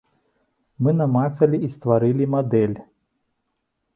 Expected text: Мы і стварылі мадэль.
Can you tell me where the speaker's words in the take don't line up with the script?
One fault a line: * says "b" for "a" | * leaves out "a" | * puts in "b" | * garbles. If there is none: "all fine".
* puts in "намацалі"